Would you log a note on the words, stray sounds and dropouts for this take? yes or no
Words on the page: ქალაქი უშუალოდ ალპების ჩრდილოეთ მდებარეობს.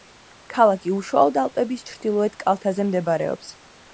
yes